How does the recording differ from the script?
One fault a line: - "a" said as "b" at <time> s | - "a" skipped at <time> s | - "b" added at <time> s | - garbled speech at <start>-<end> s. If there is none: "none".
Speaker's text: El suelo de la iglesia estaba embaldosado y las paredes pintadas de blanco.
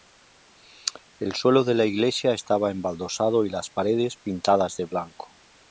none